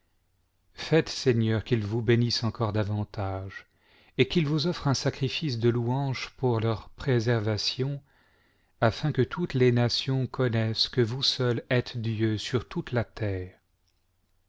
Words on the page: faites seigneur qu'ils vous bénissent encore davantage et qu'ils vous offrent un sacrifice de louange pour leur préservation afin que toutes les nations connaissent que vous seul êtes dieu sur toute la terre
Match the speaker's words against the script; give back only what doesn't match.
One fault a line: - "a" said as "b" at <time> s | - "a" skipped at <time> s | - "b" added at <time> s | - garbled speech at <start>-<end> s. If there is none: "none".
none